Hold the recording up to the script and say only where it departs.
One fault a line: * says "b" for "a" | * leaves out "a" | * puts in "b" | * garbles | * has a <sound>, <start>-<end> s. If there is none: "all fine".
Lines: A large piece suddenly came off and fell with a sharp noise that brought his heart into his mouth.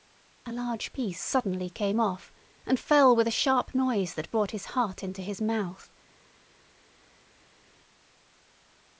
all fine